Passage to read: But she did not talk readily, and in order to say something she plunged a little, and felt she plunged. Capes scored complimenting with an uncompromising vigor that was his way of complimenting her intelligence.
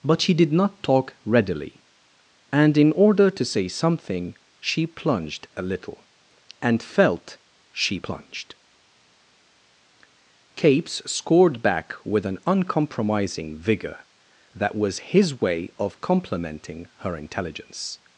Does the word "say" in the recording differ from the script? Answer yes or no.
no